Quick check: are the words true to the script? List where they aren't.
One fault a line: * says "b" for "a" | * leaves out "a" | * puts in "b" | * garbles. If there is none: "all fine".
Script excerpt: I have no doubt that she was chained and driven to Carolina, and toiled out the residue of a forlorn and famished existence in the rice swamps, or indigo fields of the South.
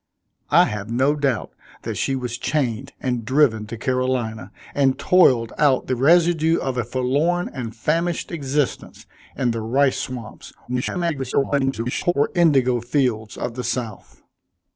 * garbles